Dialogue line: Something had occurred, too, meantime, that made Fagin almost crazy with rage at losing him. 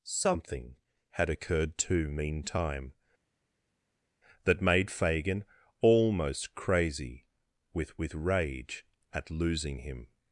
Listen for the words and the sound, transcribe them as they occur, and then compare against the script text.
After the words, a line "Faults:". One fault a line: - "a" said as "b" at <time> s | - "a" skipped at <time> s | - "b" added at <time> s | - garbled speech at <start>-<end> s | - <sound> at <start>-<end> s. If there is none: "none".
Something had occurred, too, meantime, that made Fagin almost crazy with with rage at losing him.
Faults:
- "with" added at 8.0 s